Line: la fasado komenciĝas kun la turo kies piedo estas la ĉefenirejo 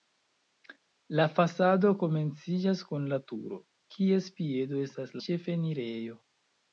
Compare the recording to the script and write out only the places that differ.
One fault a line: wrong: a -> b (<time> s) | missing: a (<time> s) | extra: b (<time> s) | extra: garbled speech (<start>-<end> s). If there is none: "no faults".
missing: la (5.2 s)